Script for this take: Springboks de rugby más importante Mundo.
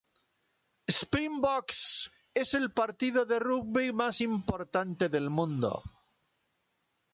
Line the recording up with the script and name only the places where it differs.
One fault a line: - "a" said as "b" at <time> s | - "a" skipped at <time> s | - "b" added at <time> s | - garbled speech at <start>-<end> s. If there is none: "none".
- "es el partido" added at 2.3 s
- "del" added at 5.1 s